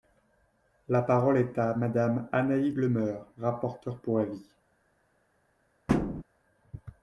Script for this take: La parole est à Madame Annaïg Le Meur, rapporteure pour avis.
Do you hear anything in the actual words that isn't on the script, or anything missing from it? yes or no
no